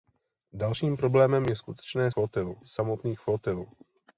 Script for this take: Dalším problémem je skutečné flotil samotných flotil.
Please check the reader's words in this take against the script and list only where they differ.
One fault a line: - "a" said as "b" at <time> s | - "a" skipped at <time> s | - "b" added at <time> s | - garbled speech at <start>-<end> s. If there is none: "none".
none